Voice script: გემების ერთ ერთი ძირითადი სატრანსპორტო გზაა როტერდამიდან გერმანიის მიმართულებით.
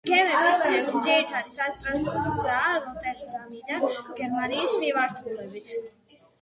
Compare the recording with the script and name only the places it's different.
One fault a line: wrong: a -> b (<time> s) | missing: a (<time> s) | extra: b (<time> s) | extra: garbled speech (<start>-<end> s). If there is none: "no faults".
missing: ერთ (0.6 s)